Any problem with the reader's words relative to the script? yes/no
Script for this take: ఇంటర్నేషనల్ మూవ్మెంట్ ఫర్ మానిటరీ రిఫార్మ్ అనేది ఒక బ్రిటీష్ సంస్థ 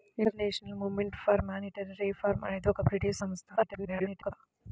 yes